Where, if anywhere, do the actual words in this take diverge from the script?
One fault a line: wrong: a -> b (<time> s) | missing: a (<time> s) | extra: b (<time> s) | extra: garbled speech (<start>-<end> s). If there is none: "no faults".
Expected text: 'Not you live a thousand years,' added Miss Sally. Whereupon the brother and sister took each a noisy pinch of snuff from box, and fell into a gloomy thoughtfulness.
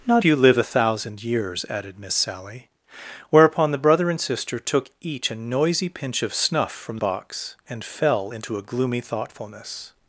no faults